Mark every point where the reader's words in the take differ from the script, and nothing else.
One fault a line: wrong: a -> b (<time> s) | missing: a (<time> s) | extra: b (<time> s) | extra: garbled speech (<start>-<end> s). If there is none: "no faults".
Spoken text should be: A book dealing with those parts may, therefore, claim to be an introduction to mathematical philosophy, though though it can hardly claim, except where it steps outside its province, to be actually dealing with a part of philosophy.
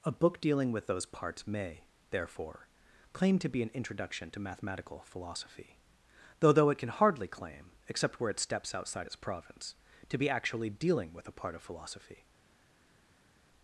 no faults